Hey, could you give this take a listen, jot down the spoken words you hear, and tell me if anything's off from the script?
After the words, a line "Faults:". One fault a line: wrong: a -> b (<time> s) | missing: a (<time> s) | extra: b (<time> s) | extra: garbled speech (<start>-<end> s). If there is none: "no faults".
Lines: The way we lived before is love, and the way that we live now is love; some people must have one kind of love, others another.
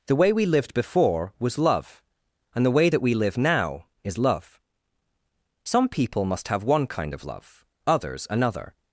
The way we lived before was love, and the way that we live now is love; some people must have one kind of love, others another.
Faults:
wrong: is -> was (1.4 s)